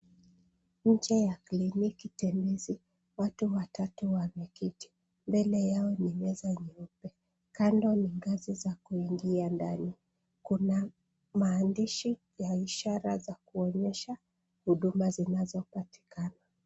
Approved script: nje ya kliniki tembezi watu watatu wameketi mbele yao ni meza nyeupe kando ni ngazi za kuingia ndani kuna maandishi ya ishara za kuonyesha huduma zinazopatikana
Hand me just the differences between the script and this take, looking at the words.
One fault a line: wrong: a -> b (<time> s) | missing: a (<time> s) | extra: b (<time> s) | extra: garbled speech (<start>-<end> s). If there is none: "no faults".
no faults